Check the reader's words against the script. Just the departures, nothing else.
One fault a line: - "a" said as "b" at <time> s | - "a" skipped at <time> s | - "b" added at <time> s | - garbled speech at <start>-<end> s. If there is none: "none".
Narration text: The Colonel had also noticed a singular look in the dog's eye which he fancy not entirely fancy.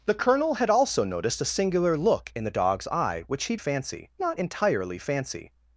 none